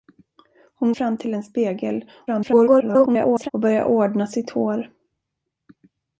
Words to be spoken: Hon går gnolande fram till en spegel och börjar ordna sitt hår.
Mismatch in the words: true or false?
true